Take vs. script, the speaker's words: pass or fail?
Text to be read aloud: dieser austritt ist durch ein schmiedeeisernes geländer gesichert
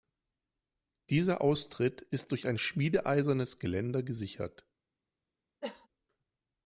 pass